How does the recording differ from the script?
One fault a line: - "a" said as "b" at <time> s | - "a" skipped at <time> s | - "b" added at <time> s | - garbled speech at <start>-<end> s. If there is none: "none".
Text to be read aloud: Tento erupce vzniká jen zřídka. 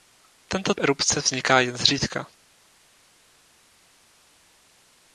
none